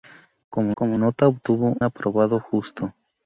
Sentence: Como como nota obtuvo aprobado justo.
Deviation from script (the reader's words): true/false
false